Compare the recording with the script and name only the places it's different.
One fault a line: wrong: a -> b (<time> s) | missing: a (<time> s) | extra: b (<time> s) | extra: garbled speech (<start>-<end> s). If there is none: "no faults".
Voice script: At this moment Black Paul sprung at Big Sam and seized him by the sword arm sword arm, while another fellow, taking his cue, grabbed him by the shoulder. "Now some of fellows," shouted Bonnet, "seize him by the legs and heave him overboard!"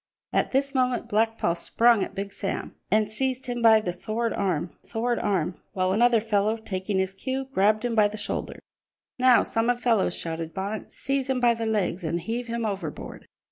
no faults